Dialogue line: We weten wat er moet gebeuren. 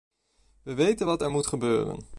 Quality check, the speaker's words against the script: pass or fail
pass